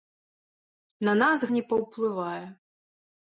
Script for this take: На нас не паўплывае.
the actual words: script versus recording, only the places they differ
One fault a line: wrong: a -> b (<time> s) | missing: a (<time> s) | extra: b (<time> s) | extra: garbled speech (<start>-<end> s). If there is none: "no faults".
no faults